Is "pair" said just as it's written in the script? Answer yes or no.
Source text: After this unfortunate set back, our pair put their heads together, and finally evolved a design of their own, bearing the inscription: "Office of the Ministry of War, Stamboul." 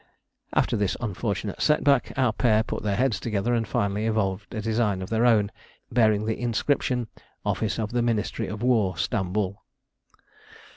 yes